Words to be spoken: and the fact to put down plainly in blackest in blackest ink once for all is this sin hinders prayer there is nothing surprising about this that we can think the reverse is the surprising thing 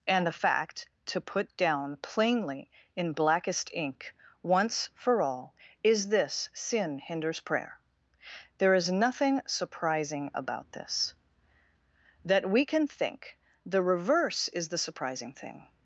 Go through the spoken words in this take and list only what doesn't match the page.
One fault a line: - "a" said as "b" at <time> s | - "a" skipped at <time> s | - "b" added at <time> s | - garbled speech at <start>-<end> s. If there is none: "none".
- "in blackest" skipped at 3.7 s